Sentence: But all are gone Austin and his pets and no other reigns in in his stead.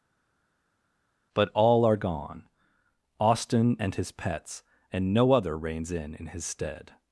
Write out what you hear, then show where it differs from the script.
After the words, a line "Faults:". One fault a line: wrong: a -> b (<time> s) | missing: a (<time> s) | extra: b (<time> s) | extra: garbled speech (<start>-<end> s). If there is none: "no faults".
But all are gone Austin and his pets and no other reigns in in his stead.
Faults:
no faults